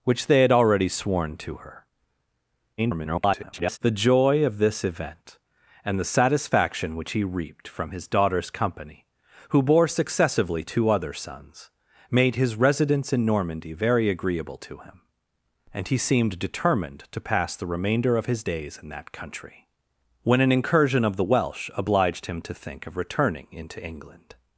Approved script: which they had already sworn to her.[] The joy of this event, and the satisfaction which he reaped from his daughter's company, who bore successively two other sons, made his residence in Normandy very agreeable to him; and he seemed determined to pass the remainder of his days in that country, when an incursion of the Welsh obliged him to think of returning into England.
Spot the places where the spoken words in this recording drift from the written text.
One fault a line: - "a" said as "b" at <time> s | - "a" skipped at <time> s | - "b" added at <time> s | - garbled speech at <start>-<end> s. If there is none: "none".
- garbled speech at 2.8-3.8 s